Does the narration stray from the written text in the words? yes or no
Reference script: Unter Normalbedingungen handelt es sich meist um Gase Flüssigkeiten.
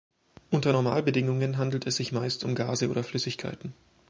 yes